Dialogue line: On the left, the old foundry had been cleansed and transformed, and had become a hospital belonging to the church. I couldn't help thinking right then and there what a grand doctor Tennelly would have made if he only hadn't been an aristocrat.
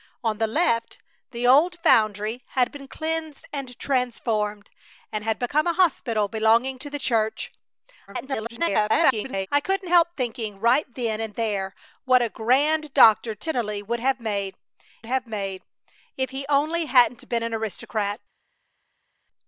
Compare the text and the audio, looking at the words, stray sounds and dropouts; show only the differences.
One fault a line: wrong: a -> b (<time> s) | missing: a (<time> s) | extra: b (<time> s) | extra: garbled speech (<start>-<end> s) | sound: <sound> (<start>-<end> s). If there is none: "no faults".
extra: garbled speech (8.1-9.5 s)
extra: have made (15.1 s)